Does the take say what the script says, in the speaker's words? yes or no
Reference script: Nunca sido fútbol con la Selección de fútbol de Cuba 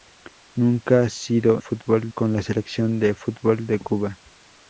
yes